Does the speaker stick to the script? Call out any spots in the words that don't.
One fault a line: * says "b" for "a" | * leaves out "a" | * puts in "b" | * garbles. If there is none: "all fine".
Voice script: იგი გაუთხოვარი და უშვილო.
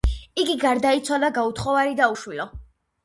* puts in "გარდაიცვალა"